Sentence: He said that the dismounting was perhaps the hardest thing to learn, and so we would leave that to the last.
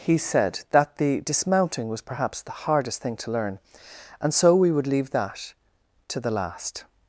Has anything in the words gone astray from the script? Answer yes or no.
no